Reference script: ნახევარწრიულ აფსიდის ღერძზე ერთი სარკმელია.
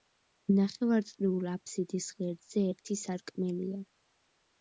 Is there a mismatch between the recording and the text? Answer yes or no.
no